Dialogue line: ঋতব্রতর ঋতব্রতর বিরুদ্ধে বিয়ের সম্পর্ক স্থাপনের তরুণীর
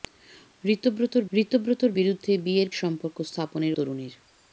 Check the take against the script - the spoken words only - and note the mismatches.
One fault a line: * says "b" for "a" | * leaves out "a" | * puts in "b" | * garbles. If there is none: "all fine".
all fine